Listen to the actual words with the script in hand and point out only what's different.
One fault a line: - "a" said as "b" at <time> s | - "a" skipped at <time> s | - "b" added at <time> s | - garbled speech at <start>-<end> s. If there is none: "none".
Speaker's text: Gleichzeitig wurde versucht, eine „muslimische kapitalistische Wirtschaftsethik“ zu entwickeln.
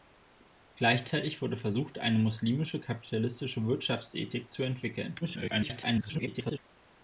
- garbled speech at 5.2-6.6 s